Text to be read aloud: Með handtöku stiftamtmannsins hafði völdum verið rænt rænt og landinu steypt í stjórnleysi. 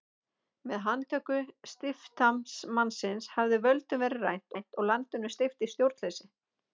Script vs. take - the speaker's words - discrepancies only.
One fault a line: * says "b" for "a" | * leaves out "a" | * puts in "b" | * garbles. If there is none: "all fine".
all fine